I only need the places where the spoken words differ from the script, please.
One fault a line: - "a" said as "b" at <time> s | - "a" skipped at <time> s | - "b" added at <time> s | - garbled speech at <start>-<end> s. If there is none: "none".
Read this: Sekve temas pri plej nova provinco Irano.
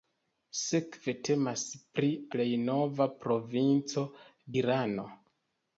none